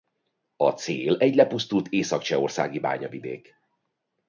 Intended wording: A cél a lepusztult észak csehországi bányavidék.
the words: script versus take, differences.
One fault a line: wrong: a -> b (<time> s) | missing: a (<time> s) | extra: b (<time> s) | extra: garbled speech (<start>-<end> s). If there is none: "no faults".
wrong: a -> egy (1.2 s)